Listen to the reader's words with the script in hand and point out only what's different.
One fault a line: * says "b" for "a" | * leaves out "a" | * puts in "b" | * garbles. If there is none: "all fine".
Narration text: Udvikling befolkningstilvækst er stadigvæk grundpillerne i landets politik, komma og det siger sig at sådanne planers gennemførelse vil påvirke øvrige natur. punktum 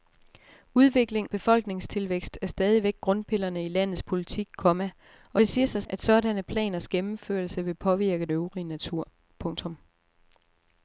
all fine